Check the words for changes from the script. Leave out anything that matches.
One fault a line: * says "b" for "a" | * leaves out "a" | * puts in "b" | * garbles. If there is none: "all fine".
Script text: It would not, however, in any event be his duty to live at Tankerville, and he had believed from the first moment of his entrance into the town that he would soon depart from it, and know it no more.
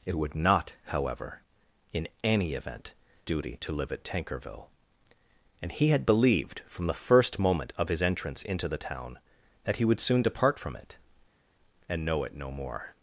* leaves out "be his"